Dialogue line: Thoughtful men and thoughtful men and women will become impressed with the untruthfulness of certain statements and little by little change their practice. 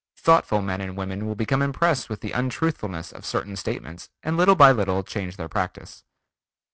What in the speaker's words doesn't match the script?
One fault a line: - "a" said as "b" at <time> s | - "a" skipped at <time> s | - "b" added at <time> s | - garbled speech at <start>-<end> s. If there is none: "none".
- "thoughtful men and" skipped at 1.0 s